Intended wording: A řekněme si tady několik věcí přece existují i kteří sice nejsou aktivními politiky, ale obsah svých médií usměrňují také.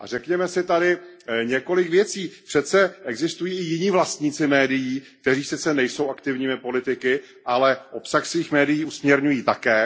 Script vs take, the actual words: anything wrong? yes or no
yes